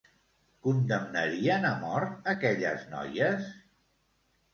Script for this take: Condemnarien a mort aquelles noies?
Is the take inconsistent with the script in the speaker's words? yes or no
no